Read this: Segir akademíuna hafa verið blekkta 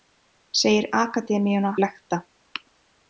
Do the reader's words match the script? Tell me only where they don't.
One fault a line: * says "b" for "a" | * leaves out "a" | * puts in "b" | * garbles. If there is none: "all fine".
* leaves out "hafa verið"